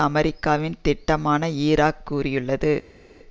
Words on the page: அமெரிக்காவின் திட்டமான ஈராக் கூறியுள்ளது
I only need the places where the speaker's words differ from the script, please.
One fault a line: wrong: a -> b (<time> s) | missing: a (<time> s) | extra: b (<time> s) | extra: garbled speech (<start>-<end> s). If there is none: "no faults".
no faults